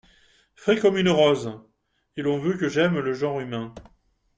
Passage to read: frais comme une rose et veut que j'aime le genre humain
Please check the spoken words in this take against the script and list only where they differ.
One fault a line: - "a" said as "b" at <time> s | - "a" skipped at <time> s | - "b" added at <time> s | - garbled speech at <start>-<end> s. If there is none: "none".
- "l'on" added at 2.2 s